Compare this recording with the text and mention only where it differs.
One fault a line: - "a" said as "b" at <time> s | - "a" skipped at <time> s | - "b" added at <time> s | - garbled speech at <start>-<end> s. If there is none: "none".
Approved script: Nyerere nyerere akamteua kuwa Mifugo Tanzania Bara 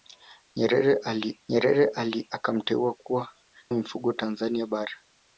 none